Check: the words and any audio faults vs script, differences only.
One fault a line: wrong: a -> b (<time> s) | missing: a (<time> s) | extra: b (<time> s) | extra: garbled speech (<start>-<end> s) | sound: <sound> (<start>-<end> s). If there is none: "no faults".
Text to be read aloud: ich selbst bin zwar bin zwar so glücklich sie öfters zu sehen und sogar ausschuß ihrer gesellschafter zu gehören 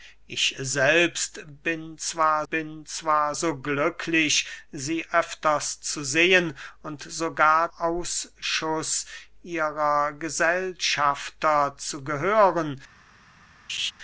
sound: laugh (13.7-13.9 s)